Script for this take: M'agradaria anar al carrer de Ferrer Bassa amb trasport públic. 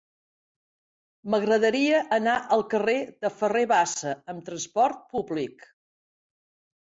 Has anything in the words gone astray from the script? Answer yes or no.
no